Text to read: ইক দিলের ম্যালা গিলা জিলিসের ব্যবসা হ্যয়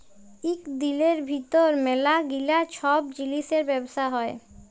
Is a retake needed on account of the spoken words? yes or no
yes